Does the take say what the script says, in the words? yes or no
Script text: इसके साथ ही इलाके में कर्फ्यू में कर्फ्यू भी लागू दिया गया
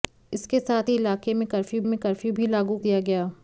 yes